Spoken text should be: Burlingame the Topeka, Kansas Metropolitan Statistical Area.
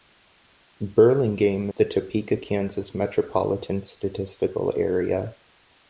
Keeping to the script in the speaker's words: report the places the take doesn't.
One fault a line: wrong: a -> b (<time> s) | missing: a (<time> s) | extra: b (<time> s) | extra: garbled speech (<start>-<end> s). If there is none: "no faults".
no faults